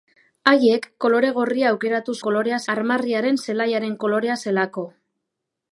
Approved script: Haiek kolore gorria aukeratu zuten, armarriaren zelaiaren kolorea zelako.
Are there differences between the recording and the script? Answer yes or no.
yes